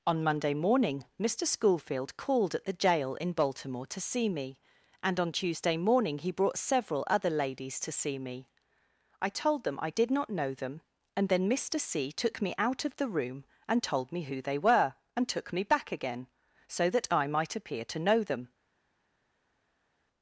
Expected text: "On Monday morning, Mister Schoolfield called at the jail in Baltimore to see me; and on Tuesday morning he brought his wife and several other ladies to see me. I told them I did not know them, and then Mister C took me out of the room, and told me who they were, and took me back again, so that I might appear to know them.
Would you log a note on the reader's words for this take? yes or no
yes